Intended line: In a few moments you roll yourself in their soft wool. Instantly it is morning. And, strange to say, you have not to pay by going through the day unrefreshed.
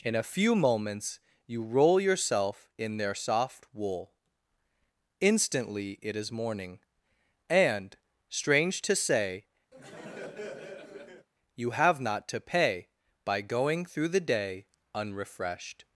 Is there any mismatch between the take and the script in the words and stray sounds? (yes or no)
yes